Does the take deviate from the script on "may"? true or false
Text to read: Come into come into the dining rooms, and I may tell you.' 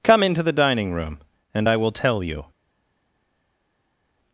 true